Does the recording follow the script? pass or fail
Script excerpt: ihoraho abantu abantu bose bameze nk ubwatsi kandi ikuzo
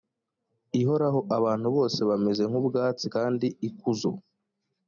fail